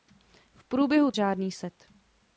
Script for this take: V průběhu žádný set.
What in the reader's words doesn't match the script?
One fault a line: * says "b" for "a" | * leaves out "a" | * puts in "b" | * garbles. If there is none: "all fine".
all fine